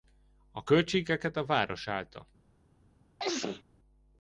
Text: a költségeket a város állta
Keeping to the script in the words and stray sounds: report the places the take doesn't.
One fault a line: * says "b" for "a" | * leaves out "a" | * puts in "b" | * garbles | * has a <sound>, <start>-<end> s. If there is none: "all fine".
* has a sneeze, 3.2-3.6 s